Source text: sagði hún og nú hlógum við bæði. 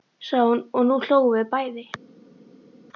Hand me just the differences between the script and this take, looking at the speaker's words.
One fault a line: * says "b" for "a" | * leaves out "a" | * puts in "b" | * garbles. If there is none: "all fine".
all fine